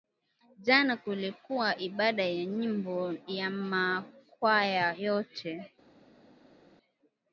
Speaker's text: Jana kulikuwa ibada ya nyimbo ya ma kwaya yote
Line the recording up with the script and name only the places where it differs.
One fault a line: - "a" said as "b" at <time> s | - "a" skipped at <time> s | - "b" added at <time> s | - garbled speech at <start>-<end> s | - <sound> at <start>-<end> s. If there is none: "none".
none